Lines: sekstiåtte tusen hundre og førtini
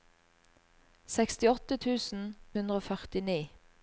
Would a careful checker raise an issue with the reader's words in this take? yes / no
no